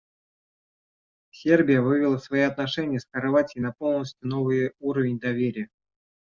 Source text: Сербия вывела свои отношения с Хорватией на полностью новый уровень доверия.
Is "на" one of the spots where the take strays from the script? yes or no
no